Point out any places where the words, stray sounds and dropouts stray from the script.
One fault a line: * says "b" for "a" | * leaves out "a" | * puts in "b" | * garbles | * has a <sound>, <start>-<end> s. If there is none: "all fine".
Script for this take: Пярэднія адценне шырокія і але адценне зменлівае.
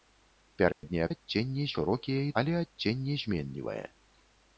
* has a dropout, 0.7-0.8 s